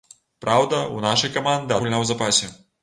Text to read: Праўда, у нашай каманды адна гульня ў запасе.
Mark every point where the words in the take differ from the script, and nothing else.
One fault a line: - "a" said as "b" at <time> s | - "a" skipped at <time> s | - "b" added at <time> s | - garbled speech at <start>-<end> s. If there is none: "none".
- "адна" skipped at 1.8 s